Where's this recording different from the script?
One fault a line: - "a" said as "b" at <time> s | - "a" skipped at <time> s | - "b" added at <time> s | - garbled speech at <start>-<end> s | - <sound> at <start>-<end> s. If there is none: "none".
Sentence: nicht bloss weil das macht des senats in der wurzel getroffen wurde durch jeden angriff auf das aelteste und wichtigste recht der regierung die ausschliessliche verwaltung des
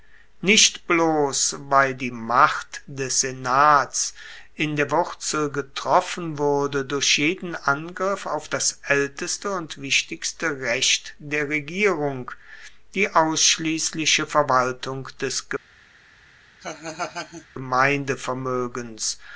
- "das" said as "die" at 1.9 s
- laugh at 16.6-17.5 s